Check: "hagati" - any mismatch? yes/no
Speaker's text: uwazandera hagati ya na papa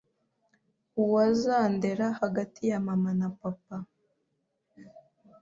no